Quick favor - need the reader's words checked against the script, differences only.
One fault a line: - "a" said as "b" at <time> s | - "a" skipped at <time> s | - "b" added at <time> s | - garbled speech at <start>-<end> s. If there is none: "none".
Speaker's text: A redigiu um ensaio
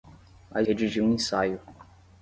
none